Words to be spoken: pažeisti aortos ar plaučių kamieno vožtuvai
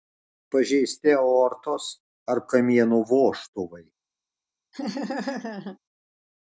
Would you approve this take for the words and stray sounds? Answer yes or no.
no